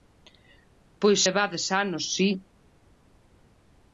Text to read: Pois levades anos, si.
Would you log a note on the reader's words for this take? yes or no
no